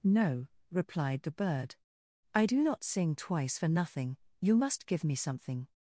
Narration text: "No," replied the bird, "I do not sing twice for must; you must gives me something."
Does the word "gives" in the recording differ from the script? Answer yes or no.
yes